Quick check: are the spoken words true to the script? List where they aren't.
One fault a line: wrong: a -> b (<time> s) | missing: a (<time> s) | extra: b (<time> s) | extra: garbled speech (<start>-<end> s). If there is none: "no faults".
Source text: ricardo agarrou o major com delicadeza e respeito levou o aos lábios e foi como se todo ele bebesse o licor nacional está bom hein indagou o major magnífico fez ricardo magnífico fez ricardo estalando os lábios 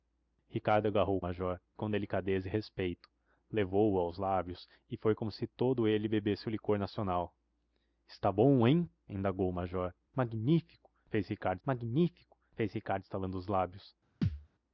no faults